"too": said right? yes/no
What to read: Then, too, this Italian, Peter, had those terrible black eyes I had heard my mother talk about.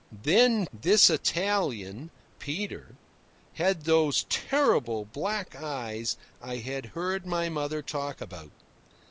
no